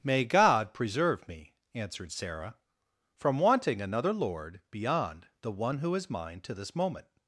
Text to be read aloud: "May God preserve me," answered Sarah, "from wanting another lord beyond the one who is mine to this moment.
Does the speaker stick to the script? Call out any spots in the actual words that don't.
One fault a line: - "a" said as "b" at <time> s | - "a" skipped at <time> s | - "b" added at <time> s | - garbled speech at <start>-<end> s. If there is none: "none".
none